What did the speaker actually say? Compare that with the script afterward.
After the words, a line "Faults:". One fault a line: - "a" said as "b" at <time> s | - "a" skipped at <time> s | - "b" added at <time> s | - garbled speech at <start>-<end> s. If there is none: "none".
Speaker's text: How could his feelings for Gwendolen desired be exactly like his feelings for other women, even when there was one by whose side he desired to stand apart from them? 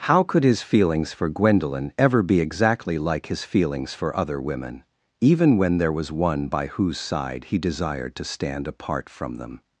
How could his feelings for Gwendolen ever be exactly like his feelings for other women, even when there was one by whose side he desired to stand apart from them?
Faults:
- "desired" said as "ever" at 1.9 s